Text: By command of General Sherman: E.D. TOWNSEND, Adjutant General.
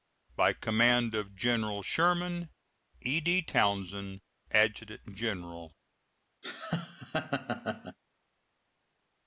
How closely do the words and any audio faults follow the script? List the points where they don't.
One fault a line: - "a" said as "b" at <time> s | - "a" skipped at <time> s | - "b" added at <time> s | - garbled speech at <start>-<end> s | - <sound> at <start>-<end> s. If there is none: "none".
- laugh at 6.4-8.0 s